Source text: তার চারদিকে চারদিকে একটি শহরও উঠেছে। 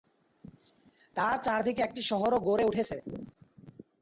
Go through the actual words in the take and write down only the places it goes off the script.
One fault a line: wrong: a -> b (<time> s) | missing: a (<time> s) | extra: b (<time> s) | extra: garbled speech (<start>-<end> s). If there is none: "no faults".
missing: চারদিকে (1.8 s)
extra: গড়ে (2.5 s)